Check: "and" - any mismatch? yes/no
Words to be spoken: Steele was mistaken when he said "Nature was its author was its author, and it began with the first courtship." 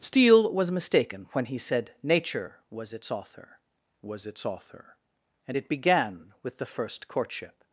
no